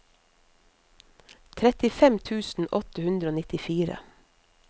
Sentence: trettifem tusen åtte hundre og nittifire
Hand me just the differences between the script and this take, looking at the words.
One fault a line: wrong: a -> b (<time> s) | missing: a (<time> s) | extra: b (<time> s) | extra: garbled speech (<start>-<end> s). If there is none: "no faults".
no faults